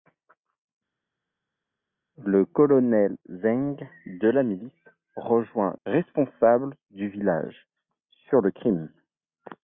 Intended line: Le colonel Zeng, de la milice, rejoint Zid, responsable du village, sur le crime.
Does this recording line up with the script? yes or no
no